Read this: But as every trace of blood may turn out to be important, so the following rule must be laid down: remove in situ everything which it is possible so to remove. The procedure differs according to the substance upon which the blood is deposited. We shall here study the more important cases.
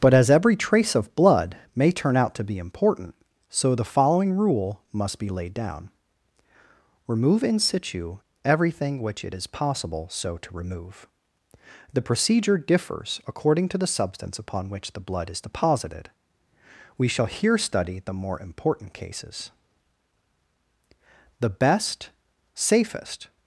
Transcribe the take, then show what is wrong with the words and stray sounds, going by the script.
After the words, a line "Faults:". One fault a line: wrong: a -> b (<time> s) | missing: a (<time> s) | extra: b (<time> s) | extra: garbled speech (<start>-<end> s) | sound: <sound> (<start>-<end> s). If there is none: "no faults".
But as every trace of blood may turn out to be important, so the following rule must be laid down: remove in situ everything which it is possible so to remove. The procedure differs according to the substance upon which the blood is deposited. We shall here study the more important cases. The best, safest
Faults:
extra: The best safest (21.4 s)